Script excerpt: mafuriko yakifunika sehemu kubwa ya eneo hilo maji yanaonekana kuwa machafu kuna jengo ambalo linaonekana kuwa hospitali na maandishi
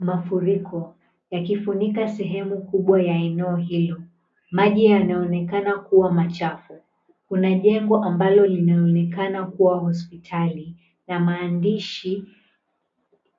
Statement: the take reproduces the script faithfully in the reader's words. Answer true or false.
true